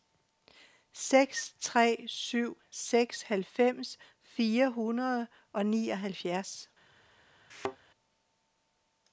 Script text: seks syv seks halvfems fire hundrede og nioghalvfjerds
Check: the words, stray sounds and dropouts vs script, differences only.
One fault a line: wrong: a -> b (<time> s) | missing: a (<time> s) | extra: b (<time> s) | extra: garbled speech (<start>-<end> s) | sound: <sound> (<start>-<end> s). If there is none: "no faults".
extra: tre (1.6 s)
sound: thud (7.5-7.8 s)